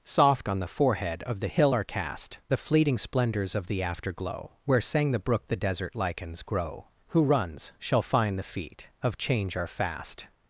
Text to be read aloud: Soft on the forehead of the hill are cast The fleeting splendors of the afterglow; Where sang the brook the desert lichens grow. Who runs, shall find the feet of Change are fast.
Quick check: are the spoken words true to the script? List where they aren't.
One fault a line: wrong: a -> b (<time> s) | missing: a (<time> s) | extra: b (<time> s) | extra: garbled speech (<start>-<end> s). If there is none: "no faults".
no faults